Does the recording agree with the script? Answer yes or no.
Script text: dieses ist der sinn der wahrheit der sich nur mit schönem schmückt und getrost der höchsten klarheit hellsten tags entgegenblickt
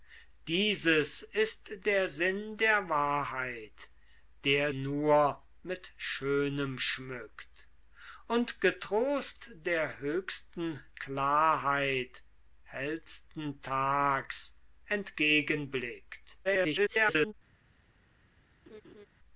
no